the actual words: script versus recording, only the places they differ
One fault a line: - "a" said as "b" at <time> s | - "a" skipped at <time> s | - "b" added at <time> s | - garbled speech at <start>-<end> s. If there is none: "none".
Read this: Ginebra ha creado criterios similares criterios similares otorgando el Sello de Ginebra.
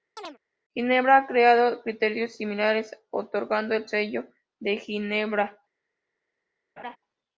- "criterios similares" skipped at 3.0 s